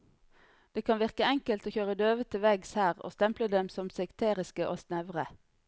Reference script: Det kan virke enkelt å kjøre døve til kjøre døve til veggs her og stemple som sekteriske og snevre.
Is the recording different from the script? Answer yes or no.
yes